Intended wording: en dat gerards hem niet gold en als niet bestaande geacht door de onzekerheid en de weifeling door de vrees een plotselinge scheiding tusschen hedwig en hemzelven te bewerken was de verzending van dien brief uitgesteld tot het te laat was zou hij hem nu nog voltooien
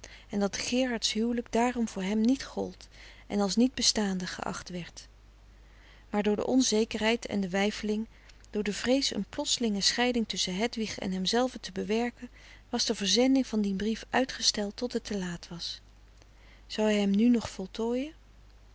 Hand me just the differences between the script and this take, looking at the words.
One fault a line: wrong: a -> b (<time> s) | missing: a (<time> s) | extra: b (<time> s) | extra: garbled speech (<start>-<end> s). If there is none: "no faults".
extra: huwelijk daarom voor (1.1 s)
extra: werd maar (4.7 s)